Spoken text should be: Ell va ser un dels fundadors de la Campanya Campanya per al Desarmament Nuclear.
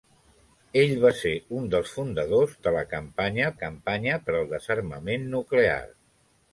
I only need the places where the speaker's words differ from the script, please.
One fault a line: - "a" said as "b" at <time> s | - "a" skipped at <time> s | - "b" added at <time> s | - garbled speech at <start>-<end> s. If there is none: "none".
none